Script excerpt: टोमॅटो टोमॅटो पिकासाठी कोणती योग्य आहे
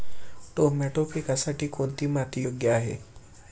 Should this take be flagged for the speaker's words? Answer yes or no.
yes